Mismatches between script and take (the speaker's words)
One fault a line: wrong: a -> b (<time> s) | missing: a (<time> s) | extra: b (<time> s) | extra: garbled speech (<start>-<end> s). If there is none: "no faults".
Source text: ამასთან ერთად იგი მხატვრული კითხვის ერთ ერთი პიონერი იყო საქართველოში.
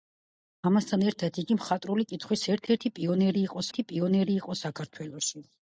extra: ერთი პიონერი იყო (3.7 s)